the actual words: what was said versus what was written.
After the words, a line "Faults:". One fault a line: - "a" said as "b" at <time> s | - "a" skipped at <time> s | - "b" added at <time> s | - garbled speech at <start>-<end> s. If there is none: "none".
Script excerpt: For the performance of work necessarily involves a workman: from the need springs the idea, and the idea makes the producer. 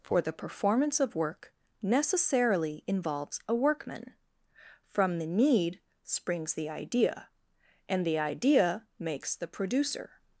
For the performance of work necessarily involves a workman: from the need springs the idea, and the idea makes the producer.
Faults:
none